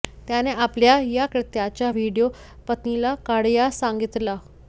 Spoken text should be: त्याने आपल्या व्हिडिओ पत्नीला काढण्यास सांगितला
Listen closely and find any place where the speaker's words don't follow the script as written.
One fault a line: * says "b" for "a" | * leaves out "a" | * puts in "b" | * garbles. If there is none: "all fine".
* puts in "या कृत्याचा"